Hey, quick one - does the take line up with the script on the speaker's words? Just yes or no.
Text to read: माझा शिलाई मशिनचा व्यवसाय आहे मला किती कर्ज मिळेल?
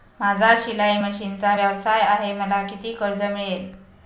yes